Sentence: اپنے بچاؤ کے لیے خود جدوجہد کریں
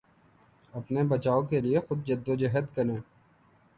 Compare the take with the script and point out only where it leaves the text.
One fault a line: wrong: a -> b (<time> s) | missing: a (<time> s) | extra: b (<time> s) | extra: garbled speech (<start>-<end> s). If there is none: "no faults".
no faults